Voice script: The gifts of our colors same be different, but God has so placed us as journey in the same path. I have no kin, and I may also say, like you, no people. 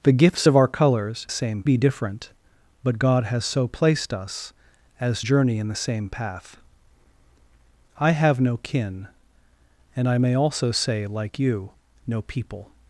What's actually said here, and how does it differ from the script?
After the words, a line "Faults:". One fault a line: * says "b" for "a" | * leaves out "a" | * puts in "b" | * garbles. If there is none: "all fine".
The gifts of our colors same be different, but God has so placed us as journey in the same path. I have no kin, and I may also say, like you, no people.
Faults:
all fine